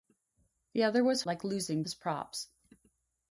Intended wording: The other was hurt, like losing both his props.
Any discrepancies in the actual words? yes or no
yes